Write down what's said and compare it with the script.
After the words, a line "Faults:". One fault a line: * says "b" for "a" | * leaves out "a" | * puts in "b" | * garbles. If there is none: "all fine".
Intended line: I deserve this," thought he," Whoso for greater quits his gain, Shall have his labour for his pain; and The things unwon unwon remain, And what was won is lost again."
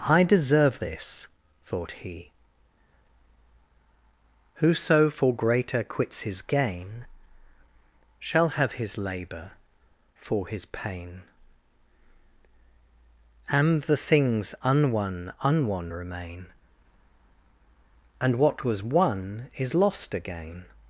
I deserve this," thought he," Whoso for greater quits his gain, Shall have his labour for his pain; and The things unwon unwon remain, And what was won is lost again."
Faults:
all fine